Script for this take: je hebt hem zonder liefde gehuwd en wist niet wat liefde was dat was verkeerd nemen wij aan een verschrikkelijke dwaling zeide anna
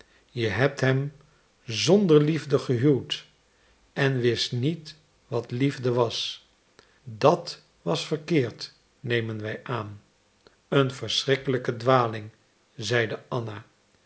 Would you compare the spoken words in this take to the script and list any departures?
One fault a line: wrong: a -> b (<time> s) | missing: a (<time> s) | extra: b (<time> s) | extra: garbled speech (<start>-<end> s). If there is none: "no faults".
no faults